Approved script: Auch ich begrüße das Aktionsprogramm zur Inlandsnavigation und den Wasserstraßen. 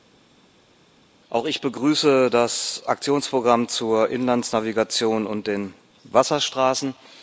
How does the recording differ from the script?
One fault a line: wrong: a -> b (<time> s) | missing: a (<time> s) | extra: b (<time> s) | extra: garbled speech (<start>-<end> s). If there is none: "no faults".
no faults